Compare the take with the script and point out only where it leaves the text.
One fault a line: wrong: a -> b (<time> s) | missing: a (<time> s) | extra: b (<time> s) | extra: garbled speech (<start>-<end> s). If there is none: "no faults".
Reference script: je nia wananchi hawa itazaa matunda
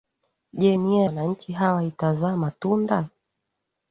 no faults